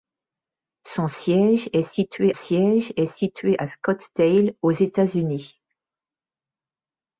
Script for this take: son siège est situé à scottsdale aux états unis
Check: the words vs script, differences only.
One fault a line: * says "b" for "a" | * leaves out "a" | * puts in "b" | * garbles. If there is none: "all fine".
* puts in "siège est situé"